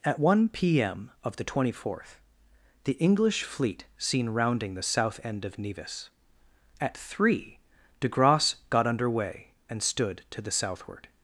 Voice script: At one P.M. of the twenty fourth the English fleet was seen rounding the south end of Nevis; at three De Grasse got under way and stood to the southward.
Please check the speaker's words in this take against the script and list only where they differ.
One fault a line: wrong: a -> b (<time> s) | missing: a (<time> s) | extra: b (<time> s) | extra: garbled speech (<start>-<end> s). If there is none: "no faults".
missing: was (3.8 s)